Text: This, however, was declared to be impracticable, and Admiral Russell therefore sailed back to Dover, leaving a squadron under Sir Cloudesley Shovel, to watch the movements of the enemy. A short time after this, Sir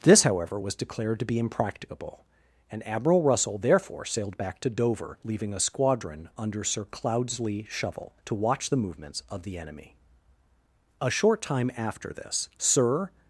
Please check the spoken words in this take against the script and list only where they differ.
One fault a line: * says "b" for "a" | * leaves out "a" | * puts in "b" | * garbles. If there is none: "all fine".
all fine